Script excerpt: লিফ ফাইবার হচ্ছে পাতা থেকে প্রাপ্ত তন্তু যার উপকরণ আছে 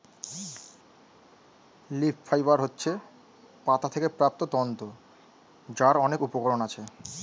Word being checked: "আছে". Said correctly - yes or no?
yes